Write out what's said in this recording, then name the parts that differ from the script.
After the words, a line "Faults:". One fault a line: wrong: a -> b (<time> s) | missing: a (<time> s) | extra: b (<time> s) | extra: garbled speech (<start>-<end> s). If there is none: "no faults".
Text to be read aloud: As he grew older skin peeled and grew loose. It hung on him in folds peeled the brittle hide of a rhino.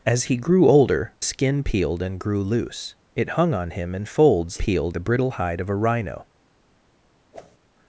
As he grew older skin peeled and grew loose. It hung on him in folds peeled the brittle hide of a rhino.
Faults:
no faults